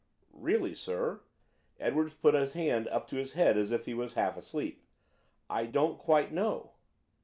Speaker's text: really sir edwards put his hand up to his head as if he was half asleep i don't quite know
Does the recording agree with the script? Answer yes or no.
yes